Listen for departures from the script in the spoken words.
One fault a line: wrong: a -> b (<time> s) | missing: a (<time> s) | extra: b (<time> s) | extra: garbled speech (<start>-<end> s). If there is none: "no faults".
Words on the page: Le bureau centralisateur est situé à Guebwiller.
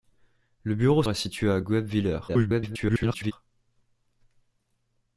missing: centralisateur (1.0 s)
extra: garbled speech (2.3-3.3 s)